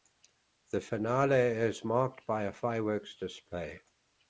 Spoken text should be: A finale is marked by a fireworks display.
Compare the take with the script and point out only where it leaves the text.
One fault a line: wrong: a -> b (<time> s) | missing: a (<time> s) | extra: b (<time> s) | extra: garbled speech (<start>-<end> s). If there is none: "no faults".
wrong: A -> The (0.7 s)